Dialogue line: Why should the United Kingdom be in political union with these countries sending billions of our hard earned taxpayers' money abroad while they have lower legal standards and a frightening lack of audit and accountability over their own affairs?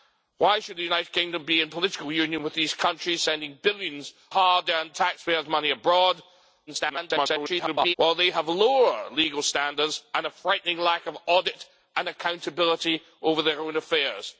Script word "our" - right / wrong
wrong